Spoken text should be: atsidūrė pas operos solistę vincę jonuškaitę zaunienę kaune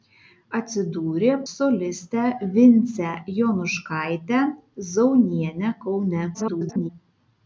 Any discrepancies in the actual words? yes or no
yes